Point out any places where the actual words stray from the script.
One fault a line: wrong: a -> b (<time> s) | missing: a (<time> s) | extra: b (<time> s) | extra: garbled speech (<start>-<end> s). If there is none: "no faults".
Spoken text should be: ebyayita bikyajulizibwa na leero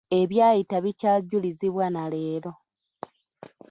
no faults